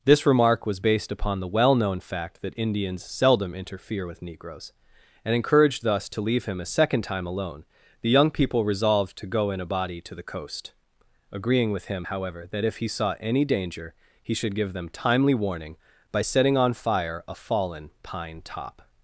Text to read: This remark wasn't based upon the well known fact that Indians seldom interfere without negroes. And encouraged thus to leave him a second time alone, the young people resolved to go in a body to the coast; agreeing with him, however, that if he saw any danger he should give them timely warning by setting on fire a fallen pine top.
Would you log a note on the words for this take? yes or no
yes